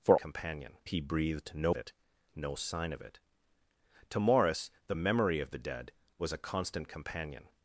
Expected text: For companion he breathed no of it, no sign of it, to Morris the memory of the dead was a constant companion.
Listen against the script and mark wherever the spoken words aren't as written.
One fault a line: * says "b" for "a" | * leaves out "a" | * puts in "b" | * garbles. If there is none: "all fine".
all fine